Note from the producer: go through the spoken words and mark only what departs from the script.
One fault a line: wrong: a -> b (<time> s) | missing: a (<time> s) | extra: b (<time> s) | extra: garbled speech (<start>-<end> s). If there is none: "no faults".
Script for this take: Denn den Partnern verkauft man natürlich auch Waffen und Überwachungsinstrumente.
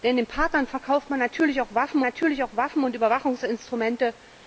extra: natürlich auch Waffen (2.0 s)